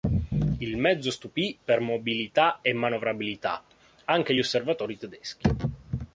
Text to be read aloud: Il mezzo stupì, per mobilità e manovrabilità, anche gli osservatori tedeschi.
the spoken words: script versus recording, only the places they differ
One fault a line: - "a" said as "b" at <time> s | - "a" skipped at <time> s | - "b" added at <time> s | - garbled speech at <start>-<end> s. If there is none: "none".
none